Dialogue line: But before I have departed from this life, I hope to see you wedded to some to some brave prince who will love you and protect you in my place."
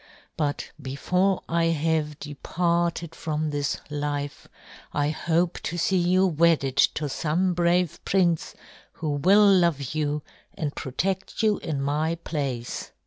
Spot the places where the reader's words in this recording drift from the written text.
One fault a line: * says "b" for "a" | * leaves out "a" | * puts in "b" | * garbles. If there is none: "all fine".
* leaves out "to some"